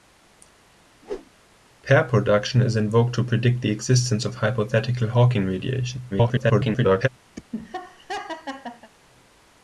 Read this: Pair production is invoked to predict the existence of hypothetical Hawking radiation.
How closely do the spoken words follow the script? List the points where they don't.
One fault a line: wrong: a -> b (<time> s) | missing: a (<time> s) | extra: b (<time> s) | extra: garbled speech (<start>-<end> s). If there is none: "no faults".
extra: garbled speech (6.1-7.1 s)